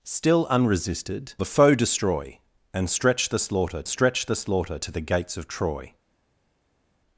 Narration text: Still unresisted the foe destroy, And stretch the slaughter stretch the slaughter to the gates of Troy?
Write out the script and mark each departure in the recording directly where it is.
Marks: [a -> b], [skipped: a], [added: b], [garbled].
Still unresisted the foe destroy, And stretch the slaughter stretch the slaughter to the gates of Troy?